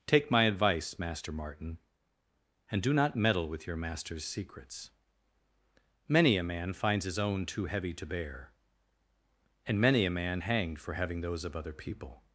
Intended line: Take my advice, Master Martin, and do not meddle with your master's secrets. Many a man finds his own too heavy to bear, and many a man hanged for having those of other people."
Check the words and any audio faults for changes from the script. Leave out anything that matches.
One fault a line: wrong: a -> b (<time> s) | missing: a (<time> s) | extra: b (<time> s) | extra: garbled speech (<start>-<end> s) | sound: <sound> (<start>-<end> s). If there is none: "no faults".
no faults